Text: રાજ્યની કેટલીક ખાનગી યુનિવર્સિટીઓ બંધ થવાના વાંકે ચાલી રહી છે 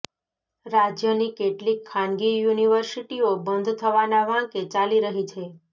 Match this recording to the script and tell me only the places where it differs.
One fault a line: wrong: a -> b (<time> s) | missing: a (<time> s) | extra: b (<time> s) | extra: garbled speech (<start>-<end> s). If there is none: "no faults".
no faults